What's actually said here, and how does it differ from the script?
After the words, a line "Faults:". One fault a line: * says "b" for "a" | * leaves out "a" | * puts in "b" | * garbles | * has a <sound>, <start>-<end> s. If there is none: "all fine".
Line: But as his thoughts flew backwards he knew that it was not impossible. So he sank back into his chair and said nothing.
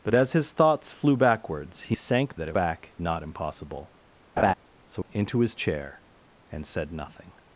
But as his thoughts flew backwards he sank that it back not impossible. So into his chair and said nothing.
Faults:
* says "sank" for "knew"
* says "back" for "was"
* has a laugh, 4.4-4.5 s
* leaves out "he sank back"